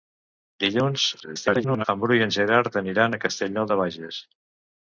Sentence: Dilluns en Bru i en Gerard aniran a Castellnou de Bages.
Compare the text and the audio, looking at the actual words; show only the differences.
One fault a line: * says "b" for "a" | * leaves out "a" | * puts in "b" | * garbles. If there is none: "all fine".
* garbles